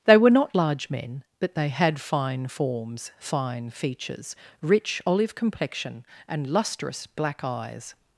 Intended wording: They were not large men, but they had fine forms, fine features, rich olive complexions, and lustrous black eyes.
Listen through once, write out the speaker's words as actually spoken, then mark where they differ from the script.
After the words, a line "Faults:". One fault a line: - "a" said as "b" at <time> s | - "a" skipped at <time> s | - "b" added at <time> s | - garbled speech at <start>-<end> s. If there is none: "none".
They were not large men, but they had fine forms, fine features, rich olive complexion, and lustrous black eyes.
Faults:
- "complexions" said as "complexion" at 5.3 s